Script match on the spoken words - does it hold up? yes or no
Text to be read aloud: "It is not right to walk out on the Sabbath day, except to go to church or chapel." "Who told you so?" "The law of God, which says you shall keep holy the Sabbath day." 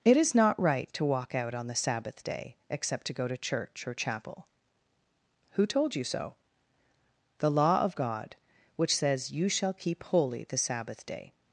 yes